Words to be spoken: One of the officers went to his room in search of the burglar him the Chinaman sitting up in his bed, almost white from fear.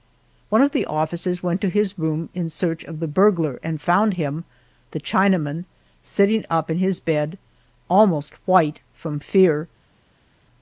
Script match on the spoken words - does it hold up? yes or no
no